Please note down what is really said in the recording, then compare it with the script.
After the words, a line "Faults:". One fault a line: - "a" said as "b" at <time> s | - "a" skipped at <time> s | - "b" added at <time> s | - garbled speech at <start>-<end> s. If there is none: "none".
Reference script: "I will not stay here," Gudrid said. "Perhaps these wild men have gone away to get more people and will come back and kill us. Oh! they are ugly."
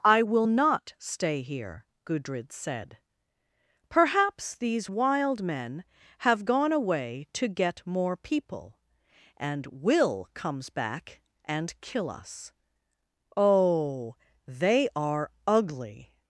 "I will not stay here," Gudrid said. "Perhaps these wild men have gone away to get more people and will comes back and kill us. Oh! they are ugly."
Faults:
- "come" said as "comes" at 10.3 s